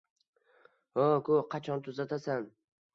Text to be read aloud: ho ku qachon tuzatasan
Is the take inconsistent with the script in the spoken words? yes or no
no